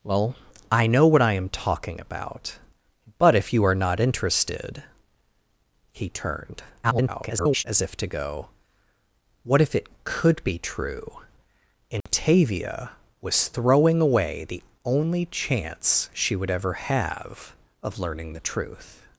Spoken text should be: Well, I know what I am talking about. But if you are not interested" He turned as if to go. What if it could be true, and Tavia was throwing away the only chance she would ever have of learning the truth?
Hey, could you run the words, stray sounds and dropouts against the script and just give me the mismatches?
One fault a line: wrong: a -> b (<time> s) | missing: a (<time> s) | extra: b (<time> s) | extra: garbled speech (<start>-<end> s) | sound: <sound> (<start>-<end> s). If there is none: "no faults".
extra: garbled speech (6.8-7.6 s)
sound: dropout (12.0-12.1 s)